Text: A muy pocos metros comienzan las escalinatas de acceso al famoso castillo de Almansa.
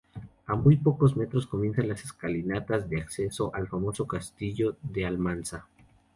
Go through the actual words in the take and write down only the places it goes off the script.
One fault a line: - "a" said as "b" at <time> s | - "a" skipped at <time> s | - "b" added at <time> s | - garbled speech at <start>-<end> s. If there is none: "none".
none